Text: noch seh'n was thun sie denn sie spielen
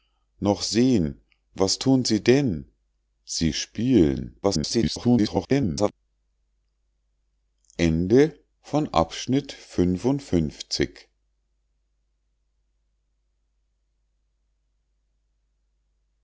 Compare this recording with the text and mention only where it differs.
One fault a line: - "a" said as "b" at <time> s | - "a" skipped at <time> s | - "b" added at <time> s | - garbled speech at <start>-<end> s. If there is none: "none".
- garbled speech at 4.4-5.9 s